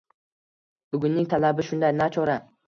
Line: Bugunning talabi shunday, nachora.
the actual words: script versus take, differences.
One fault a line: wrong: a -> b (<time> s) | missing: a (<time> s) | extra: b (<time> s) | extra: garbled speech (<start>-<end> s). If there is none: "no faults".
no faults